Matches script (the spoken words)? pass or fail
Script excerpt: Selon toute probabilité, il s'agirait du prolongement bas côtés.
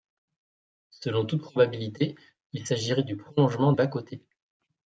pass